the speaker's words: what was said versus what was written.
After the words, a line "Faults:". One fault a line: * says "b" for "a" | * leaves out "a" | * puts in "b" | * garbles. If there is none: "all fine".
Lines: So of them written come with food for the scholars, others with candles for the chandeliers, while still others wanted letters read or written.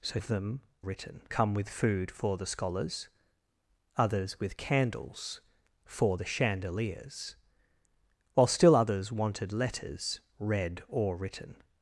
So of them written come with food for the scholars, others with candles for the chandeliers, while still others wanted letters read or written.
Faults:
all fine